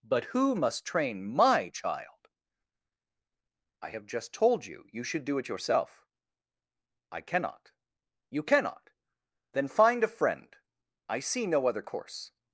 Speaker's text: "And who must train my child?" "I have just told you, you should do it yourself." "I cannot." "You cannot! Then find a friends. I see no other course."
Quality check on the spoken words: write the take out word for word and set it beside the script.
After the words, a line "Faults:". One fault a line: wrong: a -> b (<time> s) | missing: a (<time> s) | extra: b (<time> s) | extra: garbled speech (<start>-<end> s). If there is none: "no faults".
"But who must train my child?" "I have just told you, you should do it yourself." "I cannot." "You cannot! Then find a friend. I see no other course."
Faults:
wrong: And -> But (0.0 s)
wrong: friends -> friend (10.1 s)